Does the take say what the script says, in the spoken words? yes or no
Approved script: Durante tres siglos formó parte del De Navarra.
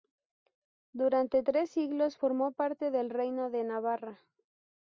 no